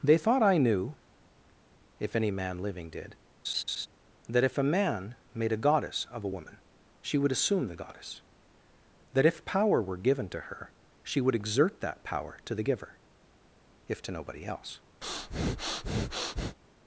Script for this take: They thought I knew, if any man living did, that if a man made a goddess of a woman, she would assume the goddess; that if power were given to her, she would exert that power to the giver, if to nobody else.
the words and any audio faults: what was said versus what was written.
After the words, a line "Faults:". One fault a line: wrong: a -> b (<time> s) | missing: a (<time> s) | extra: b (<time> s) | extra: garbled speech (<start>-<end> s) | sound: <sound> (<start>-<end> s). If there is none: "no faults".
They thought I knew, if any man living did, that if a man made a goddess of a woman, she would assume the goddess; that if power were given to her, she would exert that power to the giver, if to nobody else.
Faults:
sound: laugh (3.4-3.9 s)
sound: breath (15.0-16.6 s)